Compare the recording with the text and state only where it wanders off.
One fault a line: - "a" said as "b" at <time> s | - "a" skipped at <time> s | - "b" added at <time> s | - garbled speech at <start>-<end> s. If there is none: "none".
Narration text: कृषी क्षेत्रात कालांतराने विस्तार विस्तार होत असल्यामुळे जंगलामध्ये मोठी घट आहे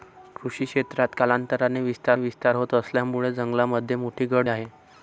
none